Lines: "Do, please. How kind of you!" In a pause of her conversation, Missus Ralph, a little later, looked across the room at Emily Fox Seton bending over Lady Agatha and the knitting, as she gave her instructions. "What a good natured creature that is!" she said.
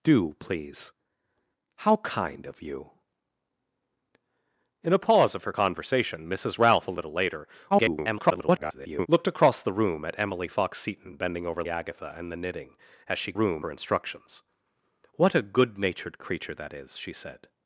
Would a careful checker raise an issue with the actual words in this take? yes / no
yes